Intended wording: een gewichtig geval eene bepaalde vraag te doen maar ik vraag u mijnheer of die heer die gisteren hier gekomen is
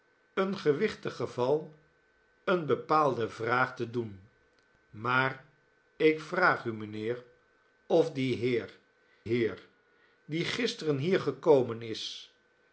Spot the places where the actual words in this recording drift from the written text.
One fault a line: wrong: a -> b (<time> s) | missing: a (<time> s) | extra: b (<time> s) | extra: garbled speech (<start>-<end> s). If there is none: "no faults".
extra: heer (9.2 s)